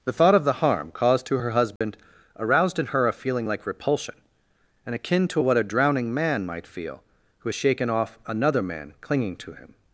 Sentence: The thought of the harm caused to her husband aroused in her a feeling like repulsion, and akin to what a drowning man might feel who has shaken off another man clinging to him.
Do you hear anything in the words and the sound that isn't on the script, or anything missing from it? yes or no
yes